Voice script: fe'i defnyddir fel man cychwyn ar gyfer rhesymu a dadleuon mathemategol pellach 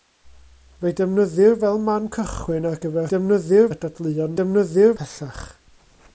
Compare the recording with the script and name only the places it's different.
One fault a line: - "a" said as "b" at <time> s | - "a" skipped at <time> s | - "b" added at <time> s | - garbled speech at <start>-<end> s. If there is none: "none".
- "rhesymu" said as "defnyddir" at 3.1 s
- "mathemategol" said as "defnyddir" at 4.4 s